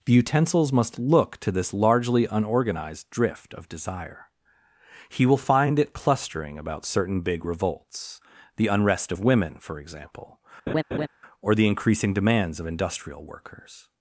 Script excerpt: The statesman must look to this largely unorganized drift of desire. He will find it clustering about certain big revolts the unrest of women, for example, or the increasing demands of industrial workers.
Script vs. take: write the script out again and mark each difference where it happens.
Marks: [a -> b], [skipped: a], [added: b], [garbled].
The [statesman -> utensils] must look to this largely unorganized drift of desire. He will find it clustering about certain big revolts the unrest of women, for example, or the increasing demands of industrial workers.